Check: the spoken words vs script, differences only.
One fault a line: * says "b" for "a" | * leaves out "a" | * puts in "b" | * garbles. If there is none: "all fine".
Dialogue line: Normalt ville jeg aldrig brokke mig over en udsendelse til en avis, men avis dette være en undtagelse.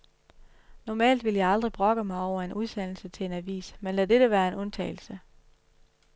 * says "lad" for "avis"